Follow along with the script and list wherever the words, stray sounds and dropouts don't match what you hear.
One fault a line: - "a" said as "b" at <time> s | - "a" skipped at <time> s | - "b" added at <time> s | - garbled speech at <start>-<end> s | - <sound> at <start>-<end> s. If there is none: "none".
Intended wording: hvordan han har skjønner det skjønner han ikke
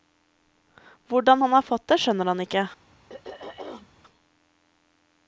- "skjønner" said as "fått" at 1.7 s
- throat clearing at 3.1-3.9 s